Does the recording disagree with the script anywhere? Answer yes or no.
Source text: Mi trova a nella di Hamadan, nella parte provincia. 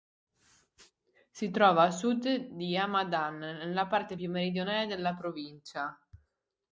yes